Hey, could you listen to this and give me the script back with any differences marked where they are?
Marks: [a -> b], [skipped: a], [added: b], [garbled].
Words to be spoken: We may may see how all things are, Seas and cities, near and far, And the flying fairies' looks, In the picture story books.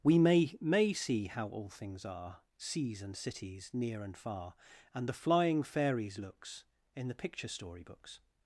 We may may see how all things are, Seas and cities, near and far, And the flying fairies' looks, In the picture story books.